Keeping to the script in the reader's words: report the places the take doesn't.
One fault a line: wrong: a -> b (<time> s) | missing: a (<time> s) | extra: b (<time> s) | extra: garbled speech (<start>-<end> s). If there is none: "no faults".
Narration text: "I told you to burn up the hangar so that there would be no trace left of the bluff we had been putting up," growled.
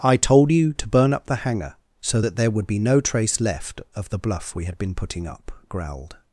no faults